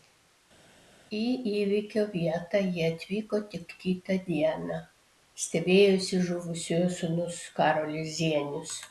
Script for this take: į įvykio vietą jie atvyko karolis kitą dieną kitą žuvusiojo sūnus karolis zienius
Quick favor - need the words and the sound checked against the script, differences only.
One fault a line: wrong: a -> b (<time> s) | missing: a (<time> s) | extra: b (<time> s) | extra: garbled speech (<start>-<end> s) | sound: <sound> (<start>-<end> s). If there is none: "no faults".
wrong: karolis -> tik (3.5 s)
wrong: kitą -> stebėjosi (5.4 s)